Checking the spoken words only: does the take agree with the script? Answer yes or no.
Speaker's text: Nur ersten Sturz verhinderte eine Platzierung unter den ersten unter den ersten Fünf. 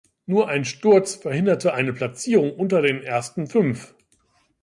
no